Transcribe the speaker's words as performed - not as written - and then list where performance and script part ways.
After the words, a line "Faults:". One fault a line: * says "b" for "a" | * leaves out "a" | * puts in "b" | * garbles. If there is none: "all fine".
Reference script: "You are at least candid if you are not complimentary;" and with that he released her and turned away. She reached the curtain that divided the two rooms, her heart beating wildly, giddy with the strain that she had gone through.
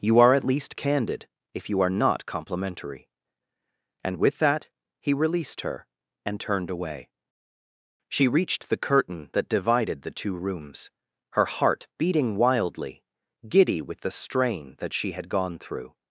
"You are at least candid if you are not complimentary;" and with that he released her and turned away. She reached the curtain that divided the two rooms, her heart beating wildly, giddy with the strain that she had gone through.
Faults:
all fine